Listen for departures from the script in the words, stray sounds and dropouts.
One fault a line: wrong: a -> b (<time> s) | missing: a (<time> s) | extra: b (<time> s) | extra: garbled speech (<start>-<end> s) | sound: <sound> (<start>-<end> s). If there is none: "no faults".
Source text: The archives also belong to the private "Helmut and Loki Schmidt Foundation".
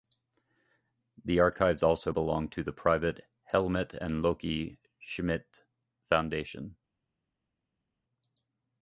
no faults